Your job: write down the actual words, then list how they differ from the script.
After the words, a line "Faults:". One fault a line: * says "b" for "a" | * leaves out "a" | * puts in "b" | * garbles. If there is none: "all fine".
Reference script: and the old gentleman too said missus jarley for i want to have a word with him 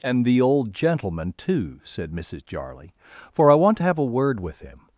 and the old gentleman too said missus jarley for i want to have a word with him
Faults:
all fine